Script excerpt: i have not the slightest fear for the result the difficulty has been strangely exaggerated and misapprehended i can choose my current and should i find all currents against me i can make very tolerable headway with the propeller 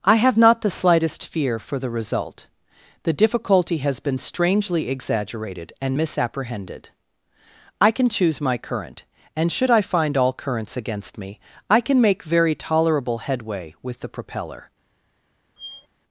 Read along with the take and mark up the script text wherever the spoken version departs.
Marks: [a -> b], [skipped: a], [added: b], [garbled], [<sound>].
i have not the slightest fear for the result the difficulty has been strangely exaggerated and misapprehended i can choose my current and should i find all currents against me i can make very tolerable headway with the propeller [squeak]